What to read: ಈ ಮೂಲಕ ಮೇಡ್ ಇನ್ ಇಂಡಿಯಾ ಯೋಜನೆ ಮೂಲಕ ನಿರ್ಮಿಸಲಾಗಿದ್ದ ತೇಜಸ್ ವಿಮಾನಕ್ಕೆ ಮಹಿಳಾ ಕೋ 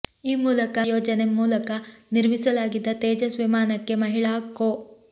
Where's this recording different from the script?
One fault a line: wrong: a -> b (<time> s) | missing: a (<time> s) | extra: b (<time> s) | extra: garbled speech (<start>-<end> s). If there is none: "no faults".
missing: ಮೇಡ್ ಇನ್ ಇಂಡಿಯಾ (0.8 s)